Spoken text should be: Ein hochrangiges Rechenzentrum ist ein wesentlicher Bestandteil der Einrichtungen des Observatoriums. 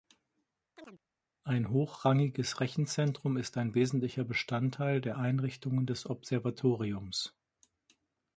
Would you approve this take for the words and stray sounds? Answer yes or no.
no